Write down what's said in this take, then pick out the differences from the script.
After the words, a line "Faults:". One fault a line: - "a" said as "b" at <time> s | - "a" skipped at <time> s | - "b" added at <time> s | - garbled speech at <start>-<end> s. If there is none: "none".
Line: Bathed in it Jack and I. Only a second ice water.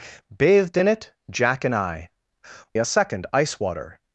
Bathed in it Jack and I. A second ice water.
Faults:
- "Only" skipped at 2.1 s